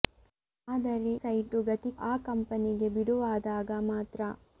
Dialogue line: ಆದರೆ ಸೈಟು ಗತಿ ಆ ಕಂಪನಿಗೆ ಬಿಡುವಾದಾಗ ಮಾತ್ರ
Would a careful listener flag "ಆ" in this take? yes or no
no